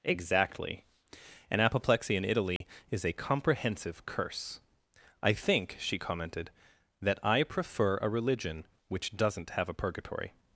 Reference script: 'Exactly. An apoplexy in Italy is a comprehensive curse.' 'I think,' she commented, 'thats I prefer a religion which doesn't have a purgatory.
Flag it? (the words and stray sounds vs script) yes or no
yes